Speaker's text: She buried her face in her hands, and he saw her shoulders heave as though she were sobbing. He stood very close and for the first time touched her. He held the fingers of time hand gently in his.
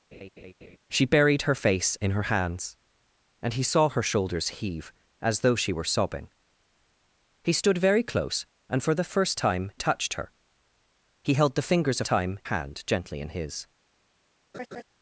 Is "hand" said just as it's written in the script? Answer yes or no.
yes